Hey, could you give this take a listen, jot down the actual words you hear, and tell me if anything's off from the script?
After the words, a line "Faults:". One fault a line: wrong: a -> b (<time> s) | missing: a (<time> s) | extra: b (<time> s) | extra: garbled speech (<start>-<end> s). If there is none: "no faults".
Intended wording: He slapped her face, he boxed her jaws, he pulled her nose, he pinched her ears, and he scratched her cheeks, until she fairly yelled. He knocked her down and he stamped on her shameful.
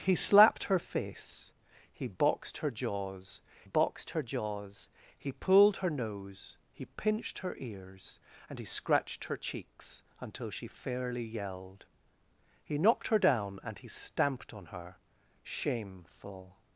He slapped her face, he boxed her jaws boxed her jaws, he pulled her nose, he pinched her ears, and he scratched her cheeks, until she fairly yelled. He knocked her down and he stamped on her shameful.
Faults:
extra: boxed her jaws (3.6 s)